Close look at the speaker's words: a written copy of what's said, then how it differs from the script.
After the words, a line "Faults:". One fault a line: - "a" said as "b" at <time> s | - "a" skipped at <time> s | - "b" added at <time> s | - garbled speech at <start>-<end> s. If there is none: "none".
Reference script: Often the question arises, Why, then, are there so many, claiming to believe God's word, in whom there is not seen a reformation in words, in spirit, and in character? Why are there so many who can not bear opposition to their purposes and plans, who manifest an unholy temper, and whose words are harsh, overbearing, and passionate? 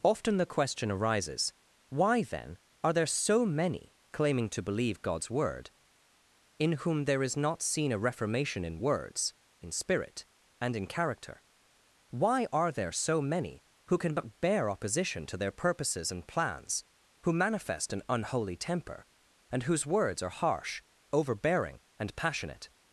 Often the question arises, Why, then, are there so many, claiming to believe God's word, in whom there is not seen a reformation in words, in spirit, and in character? Why are there so many who can but bear opposition to their purposes and plans, who manifest an unholy temper, and whose words are harsh, overbearing, and passionate?
Faults:
- "not" said as "but" at 14.1 s